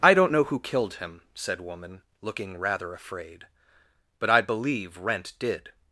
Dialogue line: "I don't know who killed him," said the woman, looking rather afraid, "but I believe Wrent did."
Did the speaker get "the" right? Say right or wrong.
wrong